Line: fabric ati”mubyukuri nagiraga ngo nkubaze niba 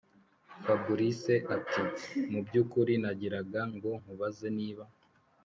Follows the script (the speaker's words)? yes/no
yes